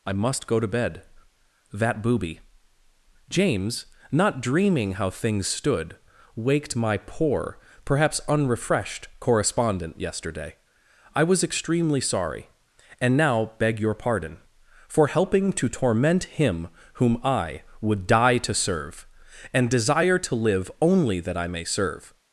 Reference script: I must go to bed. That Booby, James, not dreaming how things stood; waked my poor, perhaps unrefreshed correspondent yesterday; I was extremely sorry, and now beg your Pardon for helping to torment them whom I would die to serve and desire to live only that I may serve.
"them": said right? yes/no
no